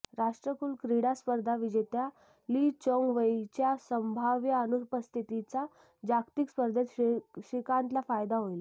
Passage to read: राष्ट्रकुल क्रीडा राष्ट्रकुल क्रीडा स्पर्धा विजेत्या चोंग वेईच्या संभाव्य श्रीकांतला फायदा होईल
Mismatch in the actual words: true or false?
true